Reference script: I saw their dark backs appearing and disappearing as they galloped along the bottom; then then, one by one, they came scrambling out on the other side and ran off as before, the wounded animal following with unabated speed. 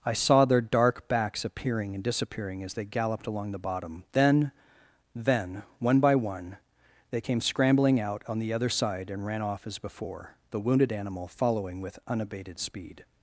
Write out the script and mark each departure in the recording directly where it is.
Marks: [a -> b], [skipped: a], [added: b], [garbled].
I saw their dark backs appearing and disappearing as they galloped along the bottom; then then, one by one, they came scrambling out on the other side and ran off as before, the wounded animal following with unabated speed.